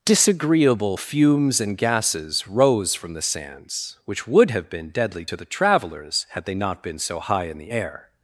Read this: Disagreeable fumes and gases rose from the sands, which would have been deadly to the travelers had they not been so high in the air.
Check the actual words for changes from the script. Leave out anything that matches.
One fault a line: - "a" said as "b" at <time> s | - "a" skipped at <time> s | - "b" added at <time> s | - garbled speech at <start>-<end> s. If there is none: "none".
none